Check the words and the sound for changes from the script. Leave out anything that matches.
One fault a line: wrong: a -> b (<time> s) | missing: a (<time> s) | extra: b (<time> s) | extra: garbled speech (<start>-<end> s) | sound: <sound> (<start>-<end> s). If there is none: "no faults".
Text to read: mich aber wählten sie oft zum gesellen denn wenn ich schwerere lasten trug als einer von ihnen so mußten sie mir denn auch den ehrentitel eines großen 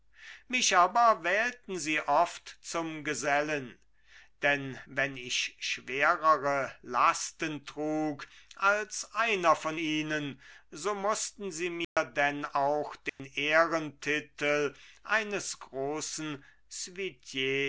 sound: dropout (11.8-12.0 s)
sound: dropout (13.1-13.2 s)